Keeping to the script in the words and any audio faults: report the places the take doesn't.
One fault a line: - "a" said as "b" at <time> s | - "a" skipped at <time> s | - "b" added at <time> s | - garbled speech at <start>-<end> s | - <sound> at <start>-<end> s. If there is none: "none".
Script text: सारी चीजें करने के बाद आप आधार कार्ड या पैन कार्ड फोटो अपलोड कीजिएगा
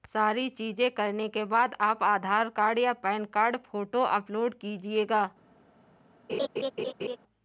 - laugh at 6.3-7.2 s